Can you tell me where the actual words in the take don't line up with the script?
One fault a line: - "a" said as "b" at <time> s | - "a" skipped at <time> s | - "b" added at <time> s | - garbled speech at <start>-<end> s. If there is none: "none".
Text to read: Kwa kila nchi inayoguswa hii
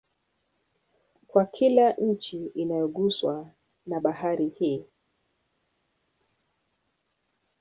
- "na Bahari" added at 3.9 s